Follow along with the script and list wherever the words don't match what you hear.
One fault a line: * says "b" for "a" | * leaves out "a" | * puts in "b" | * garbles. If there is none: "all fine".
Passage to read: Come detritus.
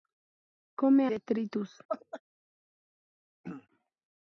all fine